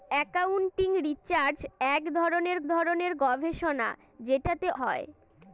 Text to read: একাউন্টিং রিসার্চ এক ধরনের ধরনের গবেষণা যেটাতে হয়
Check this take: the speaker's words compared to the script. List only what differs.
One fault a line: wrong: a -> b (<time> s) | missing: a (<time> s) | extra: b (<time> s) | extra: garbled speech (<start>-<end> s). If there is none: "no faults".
no faults